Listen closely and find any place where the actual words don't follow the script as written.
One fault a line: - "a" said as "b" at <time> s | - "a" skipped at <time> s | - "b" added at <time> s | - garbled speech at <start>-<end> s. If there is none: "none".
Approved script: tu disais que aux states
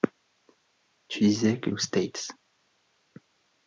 none